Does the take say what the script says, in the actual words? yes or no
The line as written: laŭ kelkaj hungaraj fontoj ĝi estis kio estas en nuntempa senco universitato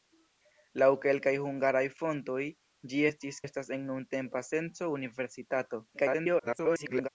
no